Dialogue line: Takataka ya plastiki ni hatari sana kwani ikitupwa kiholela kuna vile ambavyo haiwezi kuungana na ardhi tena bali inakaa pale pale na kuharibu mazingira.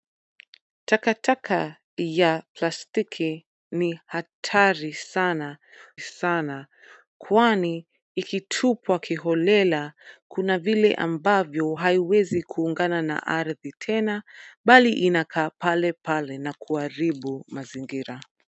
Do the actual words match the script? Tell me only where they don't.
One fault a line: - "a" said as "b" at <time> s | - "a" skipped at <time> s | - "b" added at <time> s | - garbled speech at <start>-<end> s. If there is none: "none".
- "sana" added at 6.0 s